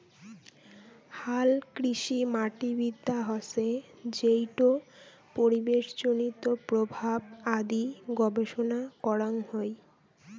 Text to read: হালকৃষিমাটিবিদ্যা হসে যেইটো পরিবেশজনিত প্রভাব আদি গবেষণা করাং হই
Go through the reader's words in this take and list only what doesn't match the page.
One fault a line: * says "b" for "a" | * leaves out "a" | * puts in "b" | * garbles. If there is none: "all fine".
all fine